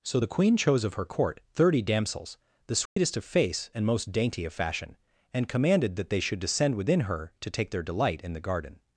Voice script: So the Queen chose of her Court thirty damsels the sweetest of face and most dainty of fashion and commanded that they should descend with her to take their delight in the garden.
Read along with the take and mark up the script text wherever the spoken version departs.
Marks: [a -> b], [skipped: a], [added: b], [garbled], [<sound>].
So the Queen chose of her Court thirty damsels the sweetest [dropout] of face and most dainty of fashion and commanded that they should descend [with -> within] her to take their delight in the garden.